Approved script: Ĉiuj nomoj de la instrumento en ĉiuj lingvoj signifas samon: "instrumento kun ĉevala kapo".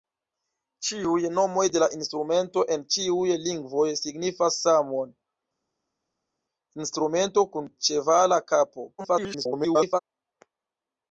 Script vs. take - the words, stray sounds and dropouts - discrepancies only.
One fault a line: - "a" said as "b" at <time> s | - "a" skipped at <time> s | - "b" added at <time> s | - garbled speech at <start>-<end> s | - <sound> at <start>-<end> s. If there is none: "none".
- garbled speech at 9.0-10.0 s